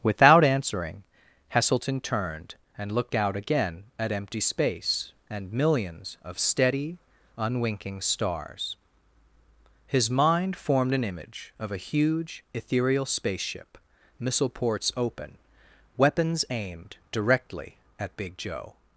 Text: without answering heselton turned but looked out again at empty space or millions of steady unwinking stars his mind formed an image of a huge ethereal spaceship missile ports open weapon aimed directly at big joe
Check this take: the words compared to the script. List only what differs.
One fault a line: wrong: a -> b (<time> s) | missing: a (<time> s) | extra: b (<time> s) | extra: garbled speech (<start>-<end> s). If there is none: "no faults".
wrong: but -> and (2.8 s)
wrong: or -> and (5.3 s)
wrong: weapon -> weapons (16.0 s)